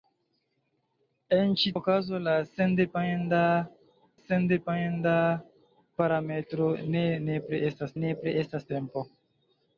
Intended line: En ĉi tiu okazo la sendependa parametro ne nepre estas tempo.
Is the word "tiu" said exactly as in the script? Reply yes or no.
no